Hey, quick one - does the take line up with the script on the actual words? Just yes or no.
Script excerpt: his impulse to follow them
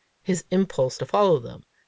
yes